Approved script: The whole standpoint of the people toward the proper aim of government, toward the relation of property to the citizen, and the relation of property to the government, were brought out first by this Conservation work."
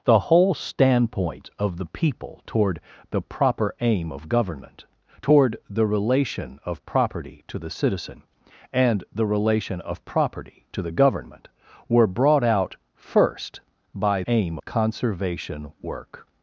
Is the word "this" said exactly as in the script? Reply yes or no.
no